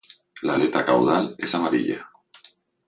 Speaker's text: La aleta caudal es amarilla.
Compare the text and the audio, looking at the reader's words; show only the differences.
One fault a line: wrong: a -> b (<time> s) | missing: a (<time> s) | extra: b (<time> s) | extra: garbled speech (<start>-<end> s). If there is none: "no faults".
no faults